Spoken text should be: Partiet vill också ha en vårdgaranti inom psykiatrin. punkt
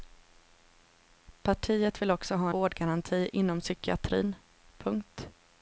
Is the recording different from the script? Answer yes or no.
yes